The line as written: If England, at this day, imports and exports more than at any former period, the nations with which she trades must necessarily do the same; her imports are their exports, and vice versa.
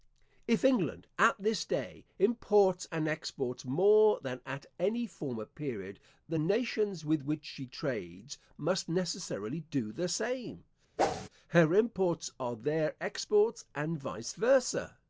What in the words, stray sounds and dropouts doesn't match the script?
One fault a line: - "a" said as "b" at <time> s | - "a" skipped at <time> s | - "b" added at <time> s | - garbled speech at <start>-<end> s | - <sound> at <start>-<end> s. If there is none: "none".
- whoosh at 11.0-11.3 s